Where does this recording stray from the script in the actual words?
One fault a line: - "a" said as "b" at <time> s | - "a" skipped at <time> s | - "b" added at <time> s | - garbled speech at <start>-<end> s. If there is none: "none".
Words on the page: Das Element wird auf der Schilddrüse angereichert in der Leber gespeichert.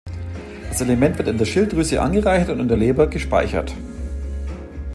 - "auf" said as "in" at 1.3 s
- "und" added at 2.5 s